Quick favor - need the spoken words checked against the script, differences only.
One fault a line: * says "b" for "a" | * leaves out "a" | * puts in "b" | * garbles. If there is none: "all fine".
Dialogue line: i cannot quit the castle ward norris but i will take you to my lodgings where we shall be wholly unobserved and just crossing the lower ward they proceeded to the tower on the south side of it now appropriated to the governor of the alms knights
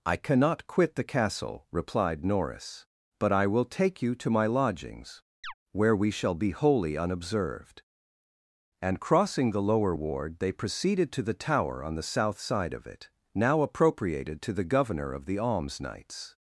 * says "replied" for "ward"
* leaves out "just"